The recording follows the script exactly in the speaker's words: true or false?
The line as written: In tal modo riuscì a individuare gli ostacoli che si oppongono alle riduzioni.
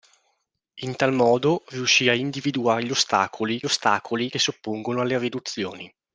false